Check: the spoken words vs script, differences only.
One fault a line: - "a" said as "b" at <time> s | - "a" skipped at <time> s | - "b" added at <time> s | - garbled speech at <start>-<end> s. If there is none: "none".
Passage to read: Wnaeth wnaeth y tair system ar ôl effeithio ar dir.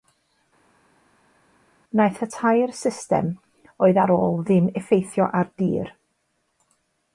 - "wnaeth" skipped at 2.2 s
- "oedd" added at 3.9 s
- "ddim" added at 4.5 s